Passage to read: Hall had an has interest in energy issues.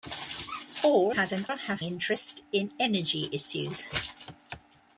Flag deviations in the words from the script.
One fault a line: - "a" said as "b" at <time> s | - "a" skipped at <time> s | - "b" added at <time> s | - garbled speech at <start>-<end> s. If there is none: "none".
none